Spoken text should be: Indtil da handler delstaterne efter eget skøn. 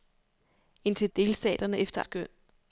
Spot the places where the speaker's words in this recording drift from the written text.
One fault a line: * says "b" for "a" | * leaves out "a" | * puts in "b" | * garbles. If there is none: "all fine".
* leaves out "da handler"
* leaves out "eget"